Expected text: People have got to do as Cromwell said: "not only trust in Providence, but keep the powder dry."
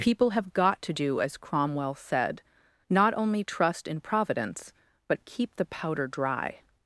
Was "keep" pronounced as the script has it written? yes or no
yes